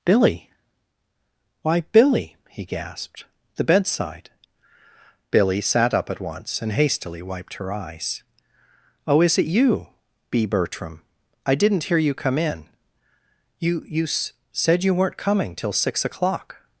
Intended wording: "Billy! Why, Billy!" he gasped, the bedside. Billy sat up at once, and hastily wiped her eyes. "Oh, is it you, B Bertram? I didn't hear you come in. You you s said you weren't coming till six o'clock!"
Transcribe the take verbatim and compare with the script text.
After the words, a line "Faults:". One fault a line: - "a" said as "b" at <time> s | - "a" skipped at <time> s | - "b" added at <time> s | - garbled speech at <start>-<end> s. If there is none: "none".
"Billy! Why, Billy!" he gasped, the bedside. Billy sat up at once, and hastily wiped her eyes. "Oh, is it you, B Bertram? I didn't hear you come in. You you s said you weren't coming till six o'clock!"
Faults:
none